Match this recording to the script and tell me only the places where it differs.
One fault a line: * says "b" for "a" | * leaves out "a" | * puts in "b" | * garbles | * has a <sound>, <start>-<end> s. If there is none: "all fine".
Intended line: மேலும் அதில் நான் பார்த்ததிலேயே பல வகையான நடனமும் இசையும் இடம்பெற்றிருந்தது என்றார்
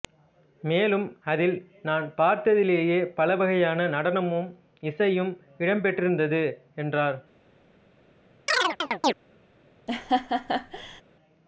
* has a chirp, 8.5-9.1 s
* has a laugh, 9.9-11.0 s